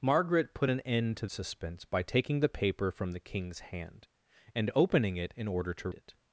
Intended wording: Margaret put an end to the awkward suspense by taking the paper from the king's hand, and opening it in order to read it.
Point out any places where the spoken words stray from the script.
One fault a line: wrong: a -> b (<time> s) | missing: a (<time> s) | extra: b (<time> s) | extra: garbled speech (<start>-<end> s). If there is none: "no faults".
missing: the awkward (1.3 s)
missing: read (5.9 s)